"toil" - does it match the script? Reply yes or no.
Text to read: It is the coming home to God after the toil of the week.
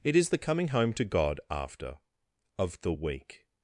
no